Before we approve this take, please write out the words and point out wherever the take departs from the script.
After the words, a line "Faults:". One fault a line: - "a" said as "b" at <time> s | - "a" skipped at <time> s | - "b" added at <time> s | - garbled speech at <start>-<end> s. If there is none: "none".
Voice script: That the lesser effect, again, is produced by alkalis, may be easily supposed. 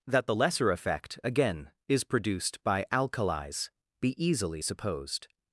That the lesser effect, again, is produced by alkalis, be easily supposed.
Faults:
- "may" skipped at 3.7 s